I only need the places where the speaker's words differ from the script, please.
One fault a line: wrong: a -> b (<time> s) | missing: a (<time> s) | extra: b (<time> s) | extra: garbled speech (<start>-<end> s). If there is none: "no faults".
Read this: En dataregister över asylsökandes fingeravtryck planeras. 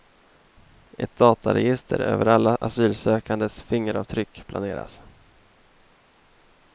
wrong: En -> Ett (1.0 s)
extra: alla (2.2 s)